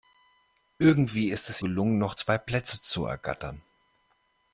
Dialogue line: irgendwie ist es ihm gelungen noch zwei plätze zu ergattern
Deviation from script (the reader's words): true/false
true